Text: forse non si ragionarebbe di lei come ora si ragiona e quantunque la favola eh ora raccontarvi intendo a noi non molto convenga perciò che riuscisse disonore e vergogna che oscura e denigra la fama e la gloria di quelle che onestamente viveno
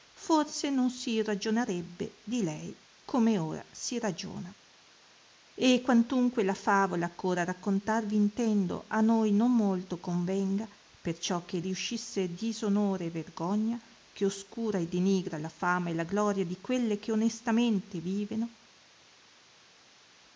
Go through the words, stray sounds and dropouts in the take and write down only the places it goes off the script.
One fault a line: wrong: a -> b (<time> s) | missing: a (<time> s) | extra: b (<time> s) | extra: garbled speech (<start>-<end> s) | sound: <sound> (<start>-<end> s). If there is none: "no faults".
no faults